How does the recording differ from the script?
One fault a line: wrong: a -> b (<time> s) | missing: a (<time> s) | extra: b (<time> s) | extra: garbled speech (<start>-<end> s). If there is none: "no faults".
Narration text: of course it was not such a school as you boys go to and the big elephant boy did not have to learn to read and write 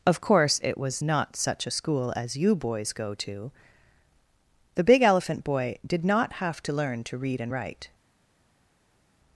missing: and (3.5 s)